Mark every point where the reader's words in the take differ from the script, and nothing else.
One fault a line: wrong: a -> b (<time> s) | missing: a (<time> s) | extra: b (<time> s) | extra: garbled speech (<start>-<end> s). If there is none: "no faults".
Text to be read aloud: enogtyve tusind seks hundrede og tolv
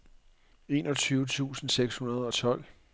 no faults